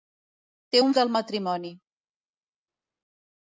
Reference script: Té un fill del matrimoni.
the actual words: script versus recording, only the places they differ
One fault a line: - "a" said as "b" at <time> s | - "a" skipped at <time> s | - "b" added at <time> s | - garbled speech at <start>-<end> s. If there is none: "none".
- "fill" skipped at 0.9 s